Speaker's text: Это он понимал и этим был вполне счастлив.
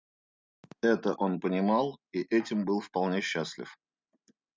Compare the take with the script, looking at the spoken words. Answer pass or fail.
pass